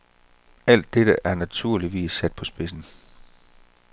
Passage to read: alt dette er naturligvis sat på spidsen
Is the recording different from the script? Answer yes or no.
no